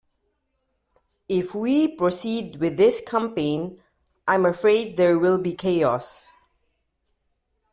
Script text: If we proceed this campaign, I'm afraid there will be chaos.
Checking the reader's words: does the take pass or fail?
fail